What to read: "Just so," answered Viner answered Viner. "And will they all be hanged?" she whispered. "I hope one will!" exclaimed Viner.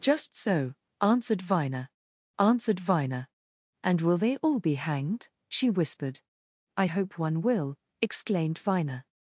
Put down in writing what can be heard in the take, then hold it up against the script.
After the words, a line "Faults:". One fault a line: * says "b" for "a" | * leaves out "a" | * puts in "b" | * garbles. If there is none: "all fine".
"Just so," answered Viner answered Viner. "And will they all be hanged?" she whispered. "I hope one will!" exclaimed Viner.
Faults:
all fine